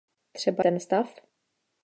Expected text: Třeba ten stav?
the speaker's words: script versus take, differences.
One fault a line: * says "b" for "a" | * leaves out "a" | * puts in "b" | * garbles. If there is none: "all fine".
all fine